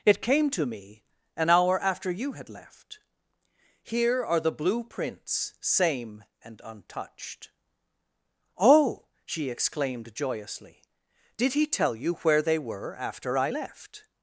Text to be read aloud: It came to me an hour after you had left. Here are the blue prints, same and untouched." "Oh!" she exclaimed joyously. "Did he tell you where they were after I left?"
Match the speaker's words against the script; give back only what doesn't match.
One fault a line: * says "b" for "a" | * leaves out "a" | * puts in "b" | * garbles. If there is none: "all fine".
all fine